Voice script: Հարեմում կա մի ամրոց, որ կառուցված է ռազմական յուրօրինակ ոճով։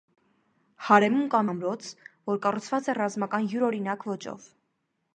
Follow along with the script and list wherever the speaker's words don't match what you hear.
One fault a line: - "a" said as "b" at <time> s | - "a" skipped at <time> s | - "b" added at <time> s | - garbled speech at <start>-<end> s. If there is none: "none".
- "մի" skipped at 1.4 s